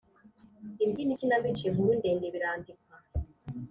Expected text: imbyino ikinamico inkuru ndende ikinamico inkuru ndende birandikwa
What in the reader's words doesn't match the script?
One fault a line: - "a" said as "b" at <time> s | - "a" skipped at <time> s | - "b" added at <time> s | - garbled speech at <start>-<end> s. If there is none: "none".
- "ikinamico inkuru ndende" skipped at 2.3 s